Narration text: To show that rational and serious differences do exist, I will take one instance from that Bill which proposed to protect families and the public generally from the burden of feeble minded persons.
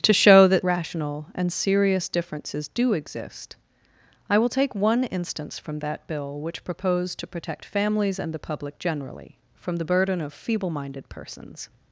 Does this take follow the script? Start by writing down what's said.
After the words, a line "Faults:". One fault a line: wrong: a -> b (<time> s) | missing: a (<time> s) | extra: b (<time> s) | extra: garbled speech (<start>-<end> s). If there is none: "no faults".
To show that rational and serious differences do exist, I will take one instance from that Bill which proposed to protect families and the public generally from the burden of feeble minded persons.
Faults:
no faults